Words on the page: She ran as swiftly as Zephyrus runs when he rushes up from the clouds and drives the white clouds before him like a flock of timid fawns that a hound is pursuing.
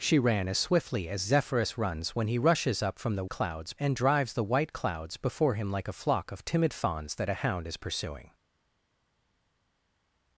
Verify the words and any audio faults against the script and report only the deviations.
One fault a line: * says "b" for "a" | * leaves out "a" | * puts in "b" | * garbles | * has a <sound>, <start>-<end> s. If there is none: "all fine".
all fine